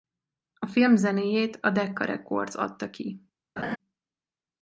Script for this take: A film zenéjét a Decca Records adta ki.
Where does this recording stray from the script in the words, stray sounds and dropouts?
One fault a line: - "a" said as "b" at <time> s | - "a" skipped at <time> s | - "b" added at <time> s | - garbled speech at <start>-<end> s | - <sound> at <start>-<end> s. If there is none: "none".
- laugh at 3.6-3.8 s